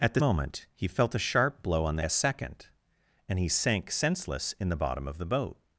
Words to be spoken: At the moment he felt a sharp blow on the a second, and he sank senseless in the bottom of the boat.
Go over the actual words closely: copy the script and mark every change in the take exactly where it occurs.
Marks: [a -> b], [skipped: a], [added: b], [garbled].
At the moment he felt a sharp blow on the a second, and he sank senseless in the bottom of the boat.